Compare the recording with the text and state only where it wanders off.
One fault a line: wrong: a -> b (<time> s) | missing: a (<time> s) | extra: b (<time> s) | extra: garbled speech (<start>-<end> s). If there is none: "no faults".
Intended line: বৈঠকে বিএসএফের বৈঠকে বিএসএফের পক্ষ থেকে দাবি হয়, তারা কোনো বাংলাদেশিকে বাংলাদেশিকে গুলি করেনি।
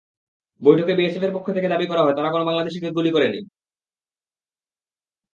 missing: বৈঠকে বিএসএফের (1.4 s)
extra: করা (1.9 s)
missing: বাংলাদেশিকে (2.9 s)